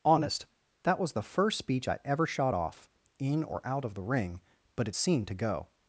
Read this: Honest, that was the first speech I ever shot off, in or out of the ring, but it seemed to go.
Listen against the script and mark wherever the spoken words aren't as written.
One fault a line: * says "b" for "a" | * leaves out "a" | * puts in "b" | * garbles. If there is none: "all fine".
all fine